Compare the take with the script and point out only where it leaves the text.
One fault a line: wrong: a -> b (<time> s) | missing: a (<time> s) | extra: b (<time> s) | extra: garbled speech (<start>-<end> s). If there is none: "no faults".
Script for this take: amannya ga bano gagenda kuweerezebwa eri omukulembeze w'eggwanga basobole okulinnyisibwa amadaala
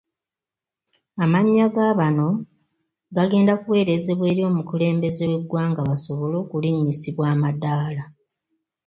no faults